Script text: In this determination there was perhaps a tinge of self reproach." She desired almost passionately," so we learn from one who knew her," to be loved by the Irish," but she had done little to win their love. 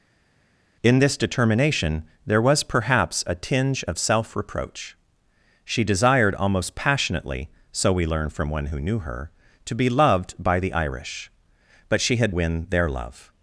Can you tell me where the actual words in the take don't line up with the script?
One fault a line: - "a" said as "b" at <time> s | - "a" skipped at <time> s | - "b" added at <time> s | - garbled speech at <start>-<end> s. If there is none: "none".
- "done little to" skipped at 12.3 s